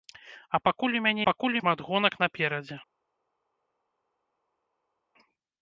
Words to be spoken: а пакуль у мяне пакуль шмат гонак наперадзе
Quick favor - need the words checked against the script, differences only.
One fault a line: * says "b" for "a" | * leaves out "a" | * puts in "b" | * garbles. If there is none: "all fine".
all fine